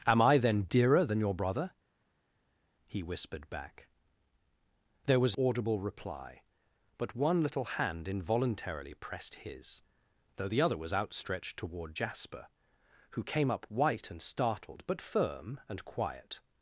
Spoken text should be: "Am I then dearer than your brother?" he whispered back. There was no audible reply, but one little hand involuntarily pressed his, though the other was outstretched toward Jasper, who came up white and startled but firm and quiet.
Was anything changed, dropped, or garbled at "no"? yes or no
yes